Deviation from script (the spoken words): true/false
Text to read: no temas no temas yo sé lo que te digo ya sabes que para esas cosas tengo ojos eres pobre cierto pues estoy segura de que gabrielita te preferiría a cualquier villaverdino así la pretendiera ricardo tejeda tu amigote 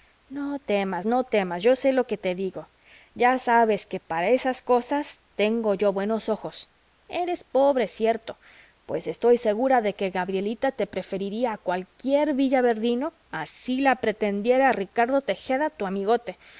true